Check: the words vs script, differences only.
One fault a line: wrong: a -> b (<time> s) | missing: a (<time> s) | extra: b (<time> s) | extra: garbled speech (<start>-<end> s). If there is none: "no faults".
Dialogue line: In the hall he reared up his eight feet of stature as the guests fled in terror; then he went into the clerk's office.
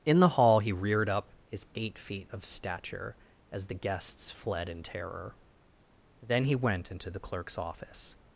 no faults